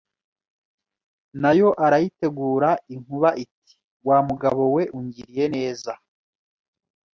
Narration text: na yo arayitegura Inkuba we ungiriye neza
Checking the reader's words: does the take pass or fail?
fail